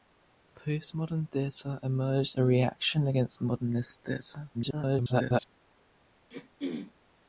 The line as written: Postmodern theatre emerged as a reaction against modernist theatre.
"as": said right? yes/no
no